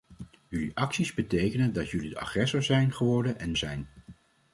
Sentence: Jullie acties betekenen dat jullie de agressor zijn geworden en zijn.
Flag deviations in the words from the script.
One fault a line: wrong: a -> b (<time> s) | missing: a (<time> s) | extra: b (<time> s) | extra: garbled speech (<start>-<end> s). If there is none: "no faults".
no faults